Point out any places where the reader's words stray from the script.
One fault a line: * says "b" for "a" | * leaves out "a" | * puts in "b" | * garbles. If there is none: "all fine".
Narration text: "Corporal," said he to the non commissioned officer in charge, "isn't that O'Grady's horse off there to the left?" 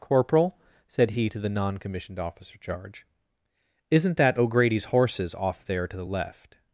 * leaves out "in"
* says "horses" for "horse"